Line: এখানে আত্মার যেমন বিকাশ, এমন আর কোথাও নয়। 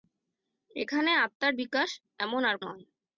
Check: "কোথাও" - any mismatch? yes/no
yes